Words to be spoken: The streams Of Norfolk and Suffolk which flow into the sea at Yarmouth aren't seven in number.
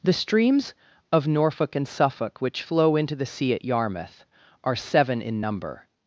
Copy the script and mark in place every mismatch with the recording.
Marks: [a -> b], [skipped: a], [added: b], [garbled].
The streams Of Norfolk and Suffolk which flow into the sea at Yarmouth [aren't -> are] seven in number.